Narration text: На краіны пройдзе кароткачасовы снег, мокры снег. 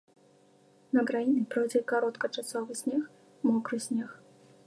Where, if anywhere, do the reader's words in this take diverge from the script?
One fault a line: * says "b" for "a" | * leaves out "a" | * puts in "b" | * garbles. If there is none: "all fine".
all fine